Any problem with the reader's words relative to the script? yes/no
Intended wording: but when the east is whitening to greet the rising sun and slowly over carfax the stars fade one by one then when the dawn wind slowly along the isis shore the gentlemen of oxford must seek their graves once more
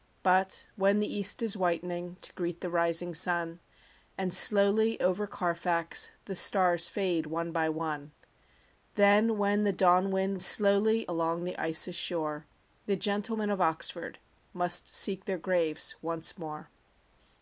no